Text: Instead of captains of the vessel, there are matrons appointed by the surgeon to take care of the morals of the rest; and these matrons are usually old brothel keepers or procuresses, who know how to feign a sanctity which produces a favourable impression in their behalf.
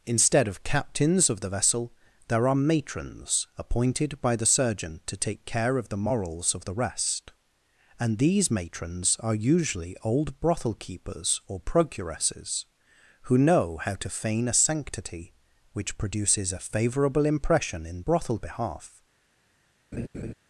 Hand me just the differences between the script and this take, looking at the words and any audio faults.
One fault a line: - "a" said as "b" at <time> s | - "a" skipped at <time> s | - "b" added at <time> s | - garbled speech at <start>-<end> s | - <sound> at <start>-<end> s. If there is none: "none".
- "their" said as "brothel" at 18.0 s
- laugh at 19.9-20.3 s